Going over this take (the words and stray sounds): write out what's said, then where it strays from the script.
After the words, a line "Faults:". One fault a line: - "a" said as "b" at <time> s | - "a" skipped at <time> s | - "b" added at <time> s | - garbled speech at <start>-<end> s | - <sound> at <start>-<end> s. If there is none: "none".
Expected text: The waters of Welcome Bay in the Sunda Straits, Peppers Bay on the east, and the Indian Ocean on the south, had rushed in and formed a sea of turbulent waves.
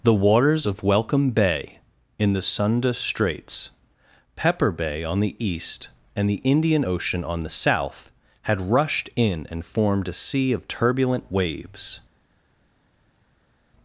The waters of Welcome Bay in the Sunda Straits, Pepper Bay on the east, and the Indian Ocean on the south, had rushed in and formed a sea of turbulent waves.
Faults:
- "Peppers" said as "Pepper" at 4.3 s